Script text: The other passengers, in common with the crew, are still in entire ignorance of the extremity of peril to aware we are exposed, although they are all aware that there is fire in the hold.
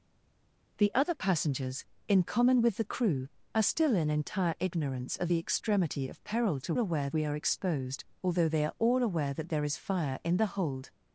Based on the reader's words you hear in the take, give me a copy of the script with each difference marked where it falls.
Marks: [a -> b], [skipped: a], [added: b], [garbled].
The other passengers, in common with the crew, are still in entire ignorance of the extremity of peril to aware we are exposed, although they are all aware that there is fire in the hold.